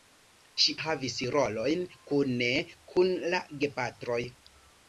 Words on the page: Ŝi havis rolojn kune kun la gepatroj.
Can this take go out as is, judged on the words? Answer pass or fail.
pass